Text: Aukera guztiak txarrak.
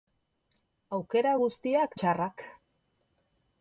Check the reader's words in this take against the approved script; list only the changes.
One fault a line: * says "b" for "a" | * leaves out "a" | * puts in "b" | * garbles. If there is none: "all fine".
all fine